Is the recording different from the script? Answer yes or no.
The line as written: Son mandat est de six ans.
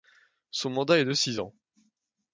no